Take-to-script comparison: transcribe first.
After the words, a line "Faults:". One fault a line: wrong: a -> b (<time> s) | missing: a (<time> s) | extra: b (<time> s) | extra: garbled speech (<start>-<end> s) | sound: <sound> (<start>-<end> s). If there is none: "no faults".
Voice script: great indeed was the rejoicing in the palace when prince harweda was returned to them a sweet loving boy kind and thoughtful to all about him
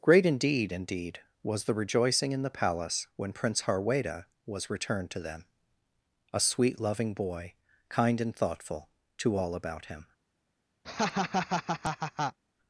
great indeed indeed was the rejoicing in the palace when prince harweda was returned to them a sweet loving boy kind and thoughtful to all about him
Faults:
extra: indeed (0.7 s)
sound: laugh (10.8-12.4 s)